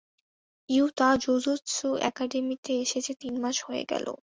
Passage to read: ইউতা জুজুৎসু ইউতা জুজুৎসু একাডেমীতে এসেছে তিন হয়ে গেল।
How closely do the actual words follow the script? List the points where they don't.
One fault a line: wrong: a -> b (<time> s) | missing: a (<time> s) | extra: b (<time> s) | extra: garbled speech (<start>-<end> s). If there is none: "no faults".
missing: ইউতা জুজুৎসু (1.9 s)
extra: মাস (3.4 s)